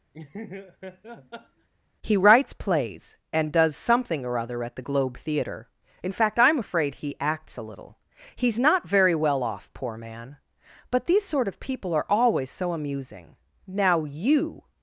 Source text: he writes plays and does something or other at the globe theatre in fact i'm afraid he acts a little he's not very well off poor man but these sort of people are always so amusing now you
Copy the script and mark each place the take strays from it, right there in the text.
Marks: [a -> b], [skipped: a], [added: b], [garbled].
he writes plays and does something or other at the globe theatre in fact i'm afraid he acts a little he's not very well off poor man but these sort of people are always so amusing now you